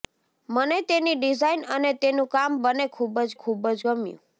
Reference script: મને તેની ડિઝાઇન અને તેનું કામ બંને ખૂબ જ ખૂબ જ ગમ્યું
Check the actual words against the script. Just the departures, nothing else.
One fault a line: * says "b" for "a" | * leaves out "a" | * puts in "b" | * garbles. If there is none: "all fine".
all fine